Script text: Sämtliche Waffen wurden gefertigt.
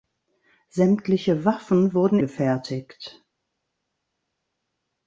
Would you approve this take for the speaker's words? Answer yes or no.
yes